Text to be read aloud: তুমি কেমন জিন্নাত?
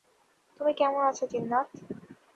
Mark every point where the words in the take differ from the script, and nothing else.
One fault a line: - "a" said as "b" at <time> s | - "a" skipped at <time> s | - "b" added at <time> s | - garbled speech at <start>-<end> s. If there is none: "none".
- "আছো" added at 1.1 s